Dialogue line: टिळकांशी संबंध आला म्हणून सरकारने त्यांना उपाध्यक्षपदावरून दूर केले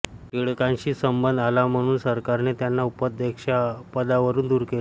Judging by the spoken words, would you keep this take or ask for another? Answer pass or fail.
pass